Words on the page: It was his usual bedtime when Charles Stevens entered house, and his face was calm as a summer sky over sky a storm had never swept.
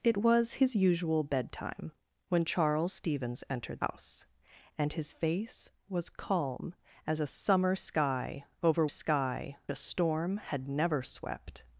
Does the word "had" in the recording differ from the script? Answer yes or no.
no